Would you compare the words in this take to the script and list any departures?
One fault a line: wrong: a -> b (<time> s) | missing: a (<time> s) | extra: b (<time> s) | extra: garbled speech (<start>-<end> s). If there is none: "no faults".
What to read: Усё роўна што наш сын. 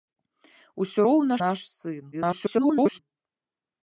missing: што (1.3 s)
extra: garbled speech (2.1-3.0 s)